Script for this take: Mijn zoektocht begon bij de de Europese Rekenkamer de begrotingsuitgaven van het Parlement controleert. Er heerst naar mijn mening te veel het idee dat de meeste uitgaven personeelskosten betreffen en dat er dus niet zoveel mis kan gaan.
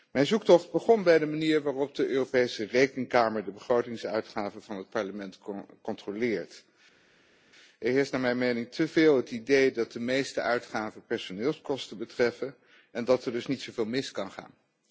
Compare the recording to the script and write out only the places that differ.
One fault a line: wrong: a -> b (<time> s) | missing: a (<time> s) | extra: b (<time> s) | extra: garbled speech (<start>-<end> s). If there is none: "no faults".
extra: manier waarop (1.2 s)